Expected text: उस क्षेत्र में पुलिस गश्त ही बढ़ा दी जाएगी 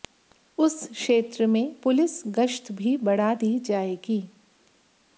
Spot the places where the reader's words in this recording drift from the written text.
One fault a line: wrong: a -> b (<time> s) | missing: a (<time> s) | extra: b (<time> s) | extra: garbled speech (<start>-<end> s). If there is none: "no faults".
wrong: ही -> भी (2.7 s)